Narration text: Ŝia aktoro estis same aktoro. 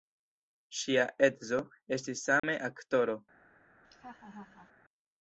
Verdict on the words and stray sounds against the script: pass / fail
fail